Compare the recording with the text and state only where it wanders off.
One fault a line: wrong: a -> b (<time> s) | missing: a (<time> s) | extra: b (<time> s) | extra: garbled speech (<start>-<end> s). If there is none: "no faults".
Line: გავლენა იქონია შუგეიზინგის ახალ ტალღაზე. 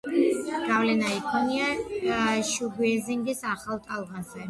no faults